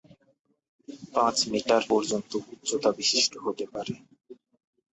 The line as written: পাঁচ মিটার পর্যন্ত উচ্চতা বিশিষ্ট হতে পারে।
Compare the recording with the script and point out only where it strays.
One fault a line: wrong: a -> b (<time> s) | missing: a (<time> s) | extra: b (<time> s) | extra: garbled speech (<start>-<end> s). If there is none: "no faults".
no faults